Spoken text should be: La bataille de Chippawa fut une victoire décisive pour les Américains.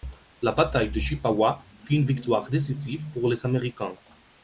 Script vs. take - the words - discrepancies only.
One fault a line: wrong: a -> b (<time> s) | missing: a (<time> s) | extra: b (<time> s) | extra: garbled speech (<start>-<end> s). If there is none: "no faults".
no faults